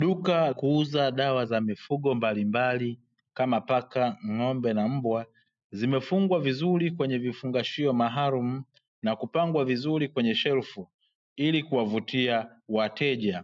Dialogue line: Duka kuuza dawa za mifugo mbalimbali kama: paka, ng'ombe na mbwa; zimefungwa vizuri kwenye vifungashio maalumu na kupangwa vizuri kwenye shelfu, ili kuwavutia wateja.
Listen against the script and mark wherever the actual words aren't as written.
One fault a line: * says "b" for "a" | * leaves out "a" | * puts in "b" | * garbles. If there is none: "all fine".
all fine